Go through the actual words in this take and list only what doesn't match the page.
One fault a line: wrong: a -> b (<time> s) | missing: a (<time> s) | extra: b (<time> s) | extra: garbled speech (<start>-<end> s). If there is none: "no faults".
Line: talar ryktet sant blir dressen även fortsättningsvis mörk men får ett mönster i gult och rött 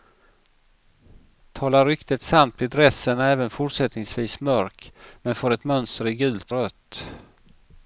missing: och (6.5 s)